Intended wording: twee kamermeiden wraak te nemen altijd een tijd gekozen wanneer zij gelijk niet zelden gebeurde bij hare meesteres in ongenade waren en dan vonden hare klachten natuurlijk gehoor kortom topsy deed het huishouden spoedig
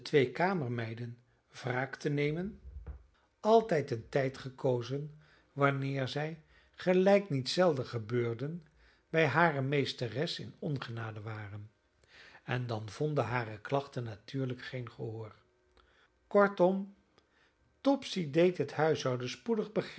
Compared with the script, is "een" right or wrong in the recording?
right